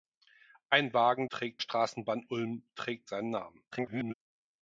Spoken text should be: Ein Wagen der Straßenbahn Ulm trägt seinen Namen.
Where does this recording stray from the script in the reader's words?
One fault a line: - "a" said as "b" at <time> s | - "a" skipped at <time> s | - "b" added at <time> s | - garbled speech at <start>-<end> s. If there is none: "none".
- "der" said as "trägt" at 1.3 s
- garbled speech at 3.7-4.1 s